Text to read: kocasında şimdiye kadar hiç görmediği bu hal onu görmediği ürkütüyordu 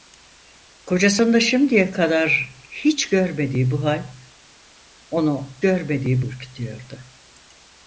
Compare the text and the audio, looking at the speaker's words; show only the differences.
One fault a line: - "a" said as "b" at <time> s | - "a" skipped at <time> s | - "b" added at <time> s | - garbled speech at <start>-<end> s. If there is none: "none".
none